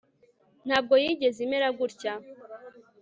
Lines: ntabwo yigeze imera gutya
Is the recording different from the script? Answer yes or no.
no